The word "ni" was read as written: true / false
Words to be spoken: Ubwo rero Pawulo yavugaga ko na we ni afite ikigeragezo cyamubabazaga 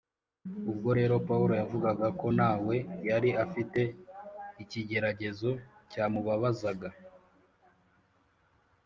false